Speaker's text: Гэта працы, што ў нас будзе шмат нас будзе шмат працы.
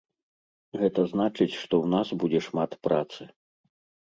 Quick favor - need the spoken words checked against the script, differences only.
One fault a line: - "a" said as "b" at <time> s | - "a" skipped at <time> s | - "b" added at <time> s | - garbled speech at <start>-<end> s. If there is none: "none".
- "працы" said as "значыць" at 1.1 s
- "нас будзе шмат" skipped at 2.7 s